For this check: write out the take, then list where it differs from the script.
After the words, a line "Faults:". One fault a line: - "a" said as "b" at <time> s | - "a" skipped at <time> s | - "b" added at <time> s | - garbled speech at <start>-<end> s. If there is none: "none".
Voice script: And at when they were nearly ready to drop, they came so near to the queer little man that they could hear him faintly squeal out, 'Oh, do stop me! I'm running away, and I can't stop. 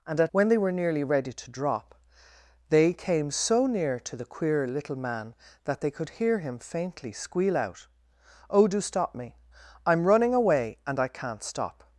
And at when they were nearly ready to drop, they came so near to the queer little man that they could hear him faintly squeal out, 'Oh, do stop me! I'm running away, and I can't stop.
Faults:
none